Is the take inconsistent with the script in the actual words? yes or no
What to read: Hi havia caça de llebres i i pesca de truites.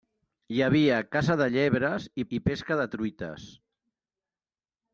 no